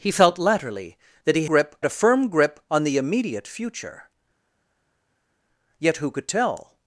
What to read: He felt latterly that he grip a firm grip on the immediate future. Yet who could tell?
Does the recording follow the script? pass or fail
pass